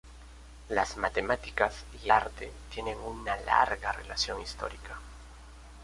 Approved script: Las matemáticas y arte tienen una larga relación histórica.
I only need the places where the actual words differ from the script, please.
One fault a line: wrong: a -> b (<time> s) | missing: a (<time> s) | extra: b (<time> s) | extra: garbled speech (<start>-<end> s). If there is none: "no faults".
no faults